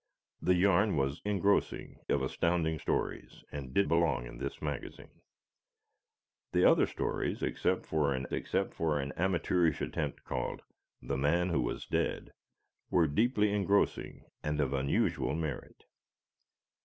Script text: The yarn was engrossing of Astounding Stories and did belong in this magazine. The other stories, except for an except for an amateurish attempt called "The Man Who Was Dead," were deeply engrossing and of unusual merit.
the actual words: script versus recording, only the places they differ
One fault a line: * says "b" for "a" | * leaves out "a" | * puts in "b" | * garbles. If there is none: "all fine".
all fine